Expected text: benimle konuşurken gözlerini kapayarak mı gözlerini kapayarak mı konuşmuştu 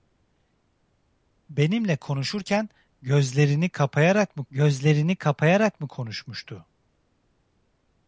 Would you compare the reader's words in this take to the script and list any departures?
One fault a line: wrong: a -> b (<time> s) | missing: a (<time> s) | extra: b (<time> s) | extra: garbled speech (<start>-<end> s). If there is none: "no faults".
no faults